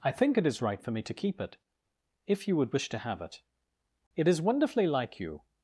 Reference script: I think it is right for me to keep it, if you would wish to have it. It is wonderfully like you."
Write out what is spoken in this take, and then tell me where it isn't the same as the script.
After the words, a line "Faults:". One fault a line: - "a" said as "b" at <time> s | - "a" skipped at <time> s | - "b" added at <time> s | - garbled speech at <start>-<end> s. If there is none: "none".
I think it is right for me to keep it, if you would wish to have it. It is wonderfully like you."
Faults:
none